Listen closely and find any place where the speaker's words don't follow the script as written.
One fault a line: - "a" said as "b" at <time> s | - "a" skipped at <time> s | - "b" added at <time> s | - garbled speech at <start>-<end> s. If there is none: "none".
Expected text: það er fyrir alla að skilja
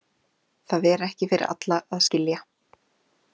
- "ekki" added at 1.1 s